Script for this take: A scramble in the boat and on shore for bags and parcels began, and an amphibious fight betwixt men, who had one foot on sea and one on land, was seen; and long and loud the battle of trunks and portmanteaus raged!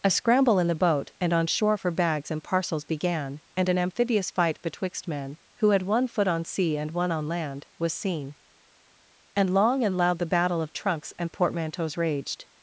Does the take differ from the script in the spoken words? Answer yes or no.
no